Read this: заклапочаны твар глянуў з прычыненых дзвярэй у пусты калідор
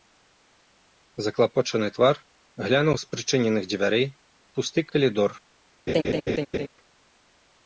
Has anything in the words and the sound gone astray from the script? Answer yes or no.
yes